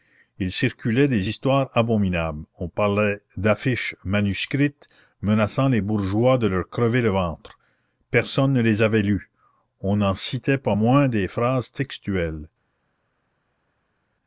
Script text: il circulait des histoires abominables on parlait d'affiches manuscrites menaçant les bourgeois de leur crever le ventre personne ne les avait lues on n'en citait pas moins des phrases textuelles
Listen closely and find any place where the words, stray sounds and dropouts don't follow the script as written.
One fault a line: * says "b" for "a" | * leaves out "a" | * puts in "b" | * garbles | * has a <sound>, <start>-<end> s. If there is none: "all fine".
all fine